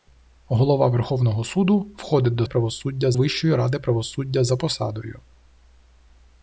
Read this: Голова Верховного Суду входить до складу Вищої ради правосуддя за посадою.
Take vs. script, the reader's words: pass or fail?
fail